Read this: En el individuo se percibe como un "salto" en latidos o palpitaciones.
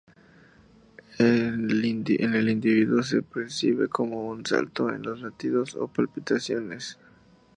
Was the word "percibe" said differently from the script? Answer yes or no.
no